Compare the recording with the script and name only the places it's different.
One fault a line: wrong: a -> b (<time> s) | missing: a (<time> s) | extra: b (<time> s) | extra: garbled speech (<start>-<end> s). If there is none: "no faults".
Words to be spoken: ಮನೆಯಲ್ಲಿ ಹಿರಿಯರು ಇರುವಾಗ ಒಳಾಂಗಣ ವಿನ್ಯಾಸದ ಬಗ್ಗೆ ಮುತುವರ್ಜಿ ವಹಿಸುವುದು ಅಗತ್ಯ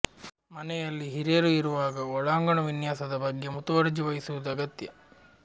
no faults